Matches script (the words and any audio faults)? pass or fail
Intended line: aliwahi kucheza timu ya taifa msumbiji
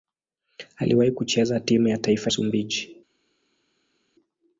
pass